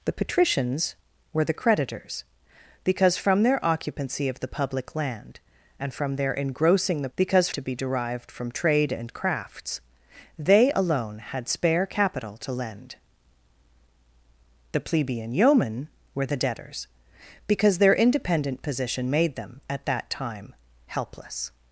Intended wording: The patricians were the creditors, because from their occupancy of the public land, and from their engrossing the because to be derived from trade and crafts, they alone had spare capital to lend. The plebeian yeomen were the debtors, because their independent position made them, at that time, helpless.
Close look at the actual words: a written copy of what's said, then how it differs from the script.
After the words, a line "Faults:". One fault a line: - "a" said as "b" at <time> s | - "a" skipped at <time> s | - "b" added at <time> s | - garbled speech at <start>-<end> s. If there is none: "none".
The patricians were the creditors, because from their occupancy of the public land, and from their engrossing the because to be derived from trade and crafts, they alone had spare capital to lend. The plebeian yeomen were the debtors, because their independent position made them, at that time, helpless.
Faults:
none